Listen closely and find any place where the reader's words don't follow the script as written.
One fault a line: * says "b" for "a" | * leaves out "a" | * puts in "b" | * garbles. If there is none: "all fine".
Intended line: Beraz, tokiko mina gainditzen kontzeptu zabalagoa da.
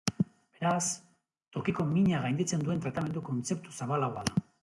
* puts in "duen tratamendu"